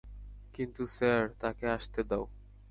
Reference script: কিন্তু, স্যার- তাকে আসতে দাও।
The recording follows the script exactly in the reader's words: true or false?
true